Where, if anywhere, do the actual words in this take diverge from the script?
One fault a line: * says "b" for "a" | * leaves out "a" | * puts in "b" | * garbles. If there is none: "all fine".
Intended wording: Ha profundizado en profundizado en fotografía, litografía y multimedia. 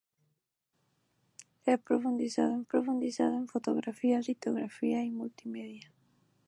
all fine